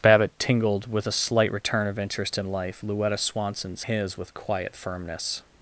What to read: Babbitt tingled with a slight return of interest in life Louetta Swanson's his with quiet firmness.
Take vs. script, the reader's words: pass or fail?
pass